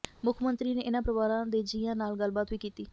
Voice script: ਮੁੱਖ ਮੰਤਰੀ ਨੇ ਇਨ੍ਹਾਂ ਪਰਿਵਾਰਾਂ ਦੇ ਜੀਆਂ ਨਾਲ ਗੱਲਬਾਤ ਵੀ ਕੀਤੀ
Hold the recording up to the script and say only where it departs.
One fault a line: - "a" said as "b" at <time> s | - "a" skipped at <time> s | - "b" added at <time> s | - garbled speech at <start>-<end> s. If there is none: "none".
none